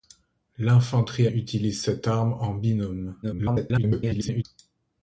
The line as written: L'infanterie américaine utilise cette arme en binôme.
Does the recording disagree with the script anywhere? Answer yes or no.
yes